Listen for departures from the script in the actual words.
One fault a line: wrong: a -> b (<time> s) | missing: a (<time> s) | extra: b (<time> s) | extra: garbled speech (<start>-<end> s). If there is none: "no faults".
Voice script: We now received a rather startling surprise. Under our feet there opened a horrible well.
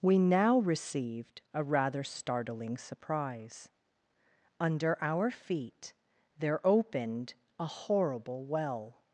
no faults